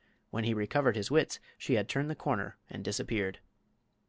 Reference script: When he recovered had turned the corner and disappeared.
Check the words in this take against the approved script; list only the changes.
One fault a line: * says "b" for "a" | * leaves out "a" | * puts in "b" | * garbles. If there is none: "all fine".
* puts in "his wits she"